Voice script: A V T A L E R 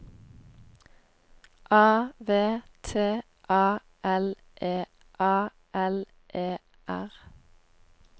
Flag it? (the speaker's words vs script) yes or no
yes